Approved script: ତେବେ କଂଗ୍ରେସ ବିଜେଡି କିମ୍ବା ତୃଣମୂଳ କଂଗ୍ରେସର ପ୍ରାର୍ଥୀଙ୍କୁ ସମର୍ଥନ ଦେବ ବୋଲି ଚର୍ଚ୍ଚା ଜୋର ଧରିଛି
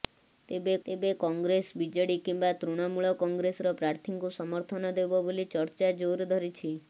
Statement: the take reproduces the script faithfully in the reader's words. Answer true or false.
false